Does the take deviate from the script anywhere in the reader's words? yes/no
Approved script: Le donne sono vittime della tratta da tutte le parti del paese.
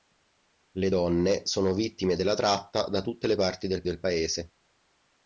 yes